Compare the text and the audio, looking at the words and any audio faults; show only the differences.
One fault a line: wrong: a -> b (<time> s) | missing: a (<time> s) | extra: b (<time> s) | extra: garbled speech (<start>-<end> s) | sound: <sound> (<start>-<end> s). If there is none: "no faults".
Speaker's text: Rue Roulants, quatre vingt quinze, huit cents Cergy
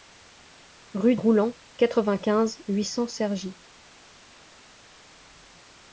no faults